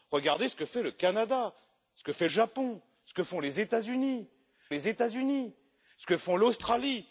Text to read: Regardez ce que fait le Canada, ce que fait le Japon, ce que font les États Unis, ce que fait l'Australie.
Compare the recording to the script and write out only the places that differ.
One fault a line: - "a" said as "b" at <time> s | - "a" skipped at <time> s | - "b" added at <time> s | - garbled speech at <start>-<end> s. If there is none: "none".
- "le" skipped at 2.3 s
- "les États Unis" added at 4.7 s